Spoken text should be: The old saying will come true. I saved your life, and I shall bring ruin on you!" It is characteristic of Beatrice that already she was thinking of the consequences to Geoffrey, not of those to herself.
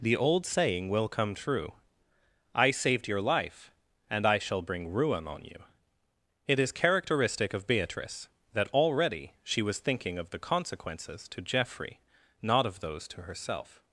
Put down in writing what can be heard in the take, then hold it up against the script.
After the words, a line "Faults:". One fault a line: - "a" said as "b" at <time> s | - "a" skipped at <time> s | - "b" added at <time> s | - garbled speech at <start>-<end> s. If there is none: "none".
The old saying will come true. I saved your life, and I shall bring ruin on you!" It is characteristic of Beatrice that already she was thinking of the consequences to Geoffrey, not of those to herself.
Faults:
none